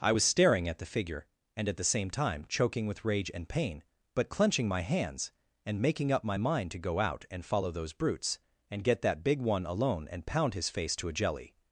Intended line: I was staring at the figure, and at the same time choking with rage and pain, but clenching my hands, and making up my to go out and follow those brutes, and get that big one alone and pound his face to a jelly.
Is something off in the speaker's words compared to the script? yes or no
yes